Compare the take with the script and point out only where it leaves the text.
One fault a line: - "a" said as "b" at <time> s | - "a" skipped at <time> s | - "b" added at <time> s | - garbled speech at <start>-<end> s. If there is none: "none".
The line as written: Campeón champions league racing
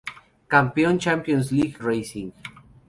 none